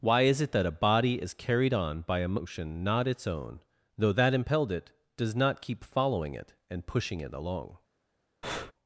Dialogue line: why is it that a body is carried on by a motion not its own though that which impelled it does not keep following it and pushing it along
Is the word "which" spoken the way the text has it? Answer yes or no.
no